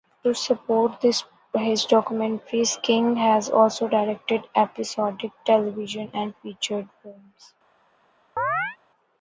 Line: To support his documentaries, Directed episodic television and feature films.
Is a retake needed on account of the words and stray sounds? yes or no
yes